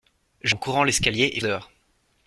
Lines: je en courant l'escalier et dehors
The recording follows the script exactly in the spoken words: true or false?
true